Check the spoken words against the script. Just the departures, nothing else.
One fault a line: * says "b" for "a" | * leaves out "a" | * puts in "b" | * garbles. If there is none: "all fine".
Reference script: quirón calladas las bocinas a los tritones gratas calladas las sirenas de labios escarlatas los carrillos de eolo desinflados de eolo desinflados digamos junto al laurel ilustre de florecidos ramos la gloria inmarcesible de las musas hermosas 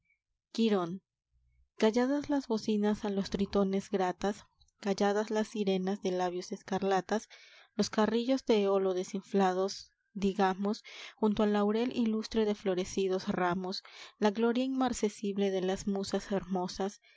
* leaves out "de eolo desinflados"